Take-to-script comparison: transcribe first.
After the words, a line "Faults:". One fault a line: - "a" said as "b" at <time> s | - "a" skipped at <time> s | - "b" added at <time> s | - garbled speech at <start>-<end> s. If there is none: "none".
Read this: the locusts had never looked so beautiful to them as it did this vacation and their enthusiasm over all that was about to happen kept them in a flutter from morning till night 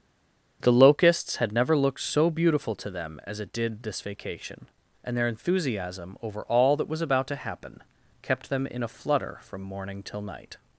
the locusts had never looked so beautiful to them as it did this vacation and their enthusiasm over all that was about to happen kept them in a flutter from morning till night
Faults:
none